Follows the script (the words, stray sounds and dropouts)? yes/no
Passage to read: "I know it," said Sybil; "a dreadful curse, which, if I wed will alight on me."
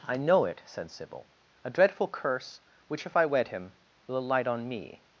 no